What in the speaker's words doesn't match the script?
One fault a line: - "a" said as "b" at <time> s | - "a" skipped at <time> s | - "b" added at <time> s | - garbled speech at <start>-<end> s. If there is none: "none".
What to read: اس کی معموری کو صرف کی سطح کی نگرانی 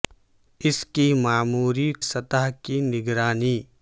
- "کو صرف کی" skipped at 1.9 s